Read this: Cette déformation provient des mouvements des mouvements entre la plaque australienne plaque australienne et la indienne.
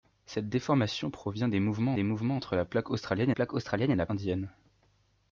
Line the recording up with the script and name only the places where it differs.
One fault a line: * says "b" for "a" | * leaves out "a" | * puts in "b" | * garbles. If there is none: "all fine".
all fine